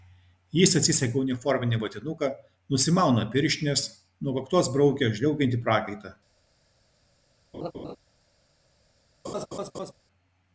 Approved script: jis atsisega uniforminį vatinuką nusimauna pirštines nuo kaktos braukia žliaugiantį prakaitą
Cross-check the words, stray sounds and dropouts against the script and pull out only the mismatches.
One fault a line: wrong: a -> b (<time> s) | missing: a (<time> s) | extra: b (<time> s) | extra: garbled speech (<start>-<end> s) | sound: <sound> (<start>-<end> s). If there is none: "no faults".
sound: laugh (7.5-8.0 s)
sound: laugh (9.2-9.9 s)